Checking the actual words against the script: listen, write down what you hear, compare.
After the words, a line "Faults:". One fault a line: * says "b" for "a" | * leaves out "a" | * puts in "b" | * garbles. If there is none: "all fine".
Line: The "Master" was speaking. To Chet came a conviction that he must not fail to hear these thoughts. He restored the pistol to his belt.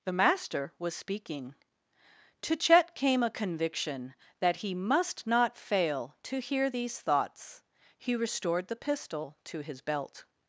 The "Master" was speaking. To Chet came a conviction that he must not fail to hear these thoughts. He restored the pistol to his belt.
Faults:
all fine